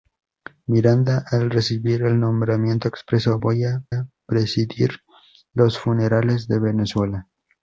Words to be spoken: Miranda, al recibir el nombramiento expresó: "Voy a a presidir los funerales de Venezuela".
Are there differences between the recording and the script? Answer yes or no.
no